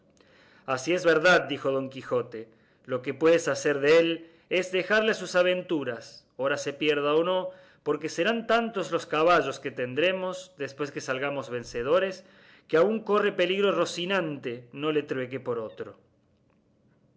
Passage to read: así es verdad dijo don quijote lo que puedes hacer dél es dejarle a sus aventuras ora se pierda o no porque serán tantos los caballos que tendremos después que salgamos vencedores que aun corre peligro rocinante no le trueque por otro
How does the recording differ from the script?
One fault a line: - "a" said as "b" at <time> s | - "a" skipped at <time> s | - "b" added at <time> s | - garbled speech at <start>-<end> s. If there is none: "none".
none